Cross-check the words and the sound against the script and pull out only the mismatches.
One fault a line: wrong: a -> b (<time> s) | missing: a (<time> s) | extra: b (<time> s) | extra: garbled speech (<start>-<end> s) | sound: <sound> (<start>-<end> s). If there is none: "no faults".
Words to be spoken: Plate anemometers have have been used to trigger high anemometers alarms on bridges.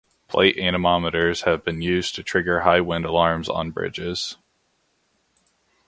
missing: have (1.6 s)
wrong: anemometers -> wind (2.8 s)